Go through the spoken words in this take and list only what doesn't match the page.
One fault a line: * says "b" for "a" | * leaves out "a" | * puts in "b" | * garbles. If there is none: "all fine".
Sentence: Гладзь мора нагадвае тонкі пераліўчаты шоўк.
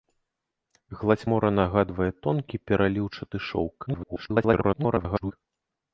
* garbles